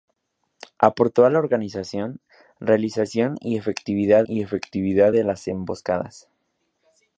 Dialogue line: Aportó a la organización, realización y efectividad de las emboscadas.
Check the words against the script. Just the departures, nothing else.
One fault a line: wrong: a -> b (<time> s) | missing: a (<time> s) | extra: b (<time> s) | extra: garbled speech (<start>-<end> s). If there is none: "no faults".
extra: y efectividad (4.2 s)